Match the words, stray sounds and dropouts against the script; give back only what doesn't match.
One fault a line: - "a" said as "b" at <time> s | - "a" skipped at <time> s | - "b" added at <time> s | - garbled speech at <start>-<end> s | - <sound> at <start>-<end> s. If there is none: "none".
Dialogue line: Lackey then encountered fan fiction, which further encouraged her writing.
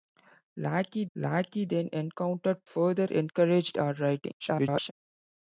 - "lackey" added at 1.1 s
- "fan fiction which" skipped at 2.6 s
- garbled speech at 4.4-4.9 s